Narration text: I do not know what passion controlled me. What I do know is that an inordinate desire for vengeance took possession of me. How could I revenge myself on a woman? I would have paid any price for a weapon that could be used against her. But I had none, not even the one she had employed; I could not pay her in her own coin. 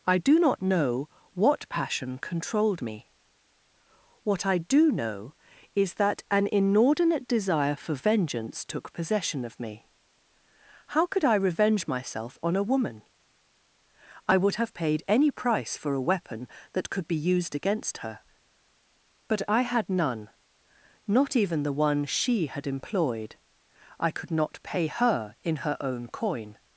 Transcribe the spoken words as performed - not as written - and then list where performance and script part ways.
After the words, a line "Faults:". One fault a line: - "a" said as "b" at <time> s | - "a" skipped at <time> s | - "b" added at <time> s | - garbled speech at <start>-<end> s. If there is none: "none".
I do not know what passion controlled me. What I do know is that an inordinate desire for vengeance took possession of me. How could I revenge myself on a woman? I would have paid any price for a weapon that could be used against her. But I had none, not even the one she had employed; I could not pay her in her own coin.
Faults:
none